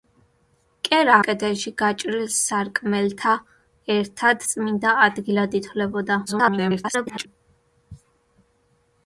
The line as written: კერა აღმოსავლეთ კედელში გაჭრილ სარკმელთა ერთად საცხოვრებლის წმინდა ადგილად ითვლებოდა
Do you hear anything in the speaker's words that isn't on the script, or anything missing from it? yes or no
yes